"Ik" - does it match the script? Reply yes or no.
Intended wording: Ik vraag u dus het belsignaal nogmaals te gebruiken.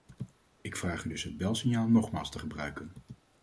yes